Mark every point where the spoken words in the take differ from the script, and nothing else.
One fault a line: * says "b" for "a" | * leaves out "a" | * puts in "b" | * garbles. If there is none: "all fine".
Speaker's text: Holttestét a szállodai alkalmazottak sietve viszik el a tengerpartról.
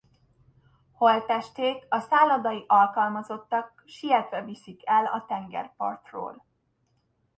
all fine